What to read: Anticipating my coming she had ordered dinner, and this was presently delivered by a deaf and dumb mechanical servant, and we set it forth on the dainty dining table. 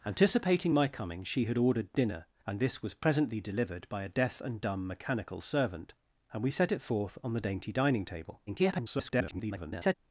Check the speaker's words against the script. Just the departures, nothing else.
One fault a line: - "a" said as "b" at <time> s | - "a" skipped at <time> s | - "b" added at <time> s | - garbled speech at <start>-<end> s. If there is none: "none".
- garbled speech at 8.5-9.9 s